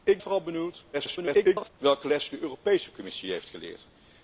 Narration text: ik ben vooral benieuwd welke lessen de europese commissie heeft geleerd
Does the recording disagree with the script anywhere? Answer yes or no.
yes